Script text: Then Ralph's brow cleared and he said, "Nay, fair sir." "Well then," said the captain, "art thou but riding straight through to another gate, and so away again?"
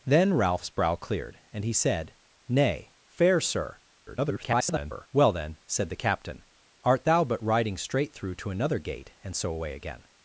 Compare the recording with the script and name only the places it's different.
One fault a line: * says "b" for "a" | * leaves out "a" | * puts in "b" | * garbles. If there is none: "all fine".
* garbles